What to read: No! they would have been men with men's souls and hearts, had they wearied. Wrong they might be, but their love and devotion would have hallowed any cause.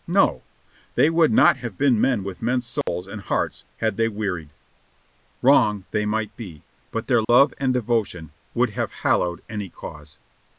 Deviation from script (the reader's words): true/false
true